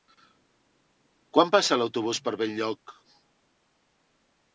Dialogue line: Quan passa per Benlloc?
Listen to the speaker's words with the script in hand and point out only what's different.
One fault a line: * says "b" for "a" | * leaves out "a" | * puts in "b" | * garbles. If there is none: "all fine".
* puts in "l'autobús"